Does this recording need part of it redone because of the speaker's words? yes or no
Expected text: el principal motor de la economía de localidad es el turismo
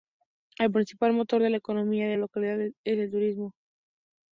no